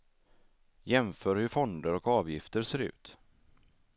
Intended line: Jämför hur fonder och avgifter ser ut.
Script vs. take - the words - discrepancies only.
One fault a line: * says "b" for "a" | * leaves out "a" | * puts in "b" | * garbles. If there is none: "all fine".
all fine